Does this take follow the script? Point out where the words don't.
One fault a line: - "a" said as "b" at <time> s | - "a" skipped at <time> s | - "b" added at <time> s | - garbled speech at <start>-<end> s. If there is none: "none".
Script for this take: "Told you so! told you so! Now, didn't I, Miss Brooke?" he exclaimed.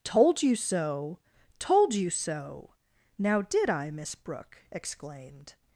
- "didn't" said as "did" at 3.4 s
- "he" skipped at 4.6 s